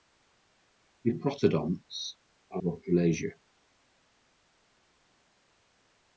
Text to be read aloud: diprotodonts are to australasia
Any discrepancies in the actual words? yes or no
no